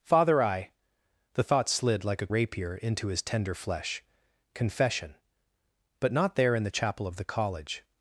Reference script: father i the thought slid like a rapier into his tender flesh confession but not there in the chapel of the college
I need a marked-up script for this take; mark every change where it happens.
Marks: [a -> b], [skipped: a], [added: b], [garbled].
father i the thought slid like a rapier into his tender flesh confession but not there in the chapel of the college